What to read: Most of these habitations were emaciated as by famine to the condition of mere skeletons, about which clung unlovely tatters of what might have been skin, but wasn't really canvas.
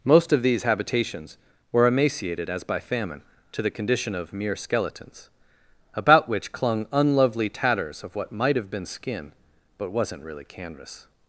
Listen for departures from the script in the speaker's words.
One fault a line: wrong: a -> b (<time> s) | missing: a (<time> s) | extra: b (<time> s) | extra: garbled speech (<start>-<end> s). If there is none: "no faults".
no faults